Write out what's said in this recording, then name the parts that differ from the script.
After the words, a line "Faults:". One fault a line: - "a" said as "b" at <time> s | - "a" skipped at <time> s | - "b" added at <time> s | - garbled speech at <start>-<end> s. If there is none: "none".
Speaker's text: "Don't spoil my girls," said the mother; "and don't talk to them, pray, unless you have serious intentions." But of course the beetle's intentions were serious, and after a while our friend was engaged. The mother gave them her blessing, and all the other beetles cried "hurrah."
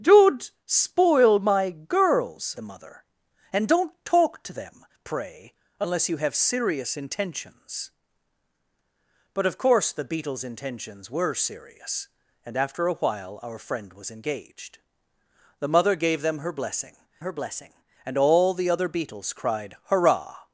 "Don't spoil my girls," the mother; "and don't talk to them, pray, unless you have serious intentions." But of course the beetle's intentions were serious, and after a while our friend was engaged. The mother gave them her blessing her blessing, and all the other beetles cried "hurrah."
Faults:
- "said" skipped at 2.5 s
- "her blessing" added at 17.2 s